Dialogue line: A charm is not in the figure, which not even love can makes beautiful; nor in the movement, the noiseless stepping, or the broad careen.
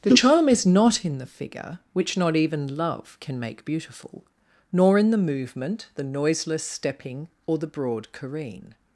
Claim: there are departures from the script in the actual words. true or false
true